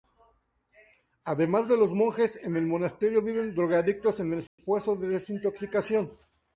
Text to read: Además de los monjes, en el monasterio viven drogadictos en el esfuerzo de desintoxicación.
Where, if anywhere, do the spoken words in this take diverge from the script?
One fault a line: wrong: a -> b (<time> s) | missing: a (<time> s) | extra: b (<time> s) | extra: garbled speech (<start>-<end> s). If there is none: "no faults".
no faults